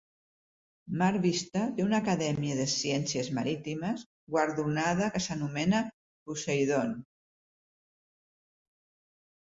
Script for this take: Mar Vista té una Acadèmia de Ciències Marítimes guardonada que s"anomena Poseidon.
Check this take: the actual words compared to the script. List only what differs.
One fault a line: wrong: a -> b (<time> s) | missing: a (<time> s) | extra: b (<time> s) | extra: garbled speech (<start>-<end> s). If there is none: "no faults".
no faults